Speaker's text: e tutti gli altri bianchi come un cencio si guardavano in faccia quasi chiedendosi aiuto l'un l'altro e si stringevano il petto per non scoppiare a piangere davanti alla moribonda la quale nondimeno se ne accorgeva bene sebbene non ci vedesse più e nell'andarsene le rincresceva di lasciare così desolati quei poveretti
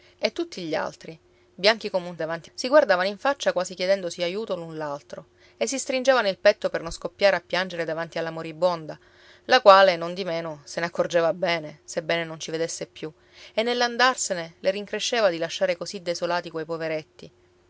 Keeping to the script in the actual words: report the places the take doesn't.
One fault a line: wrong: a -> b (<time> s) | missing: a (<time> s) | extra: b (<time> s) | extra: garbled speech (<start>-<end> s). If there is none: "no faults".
wrong: cencio -> davanti (2.2 s)